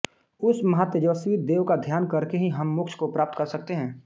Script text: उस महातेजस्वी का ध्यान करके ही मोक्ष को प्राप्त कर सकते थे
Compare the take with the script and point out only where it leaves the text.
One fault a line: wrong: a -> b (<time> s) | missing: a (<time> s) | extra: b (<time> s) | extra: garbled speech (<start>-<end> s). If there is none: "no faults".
extra: देव (1.4 s)
extra: हम (2.5 s)
wrong: थे -> हैं (3.7 s)